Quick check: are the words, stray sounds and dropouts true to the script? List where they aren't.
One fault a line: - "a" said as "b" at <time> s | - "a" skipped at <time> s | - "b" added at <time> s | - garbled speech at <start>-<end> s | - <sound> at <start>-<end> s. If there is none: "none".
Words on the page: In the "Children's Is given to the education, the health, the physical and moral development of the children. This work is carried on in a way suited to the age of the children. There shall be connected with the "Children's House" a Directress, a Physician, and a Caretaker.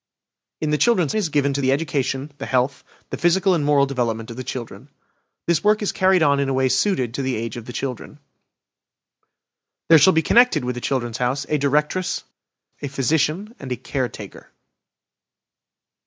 none